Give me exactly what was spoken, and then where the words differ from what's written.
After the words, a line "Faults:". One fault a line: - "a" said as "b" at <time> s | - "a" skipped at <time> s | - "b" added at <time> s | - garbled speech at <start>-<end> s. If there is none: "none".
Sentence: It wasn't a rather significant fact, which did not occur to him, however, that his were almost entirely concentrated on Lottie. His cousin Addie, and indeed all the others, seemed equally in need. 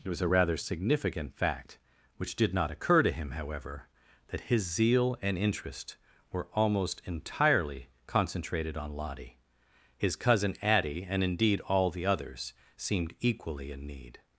It was a rather significant fact, which did not occur to him, however, that his zeal and interest were almost entirely concentrated on Lottie. His cousin Addie, and indeed all the others, seemed equally in need.
Faults:
- "wasn't" said as "was" at 0.1 s
- "zeal and interest" added at 4.6 s